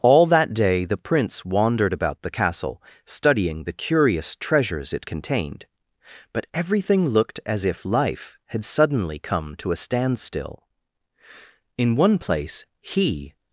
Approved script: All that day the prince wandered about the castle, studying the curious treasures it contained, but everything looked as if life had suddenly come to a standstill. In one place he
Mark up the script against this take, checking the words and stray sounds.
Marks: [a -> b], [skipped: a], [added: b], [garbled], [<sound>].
All that day the prince wandered about the castle, studying the curious treasures it contained, but everything looked as if life had suddenly come to a standstill. In one place he